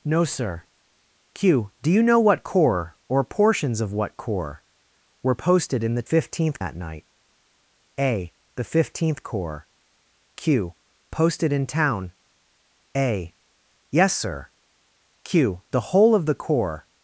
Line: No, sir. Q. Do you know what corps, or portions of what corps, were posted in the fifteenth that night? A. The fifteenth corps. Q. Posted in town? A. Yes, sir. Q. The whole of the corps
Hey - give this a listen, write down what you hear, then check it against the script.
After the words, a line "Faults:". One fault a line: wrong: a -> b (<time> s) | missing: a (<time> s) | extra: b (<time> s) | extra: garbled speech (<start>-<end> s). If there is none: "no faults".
No, sir. Q. Do you know what corps, or portions of what corps, were posted in the fifteenth that night? A. The fifteenth corps. Q. Posted in town? A. Yes, sir. Q. The whole of the corps
Faults:
no faults